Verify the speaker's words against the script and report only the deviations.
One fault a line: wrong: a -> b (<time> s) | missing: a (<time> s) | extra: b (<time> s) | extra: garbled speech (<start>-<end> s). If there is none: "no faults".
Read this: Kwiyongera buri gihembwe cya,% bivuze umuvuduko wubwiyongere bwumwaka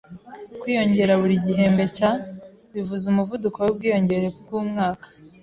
no faults